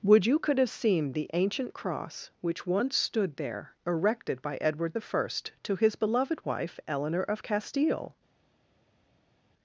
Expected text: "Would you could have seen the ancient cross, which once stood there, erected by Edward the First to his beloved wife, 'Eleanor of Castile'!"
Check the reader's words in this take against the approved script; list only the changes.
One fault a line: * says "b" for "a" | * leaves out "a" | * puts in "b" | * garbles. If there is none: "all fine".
all fine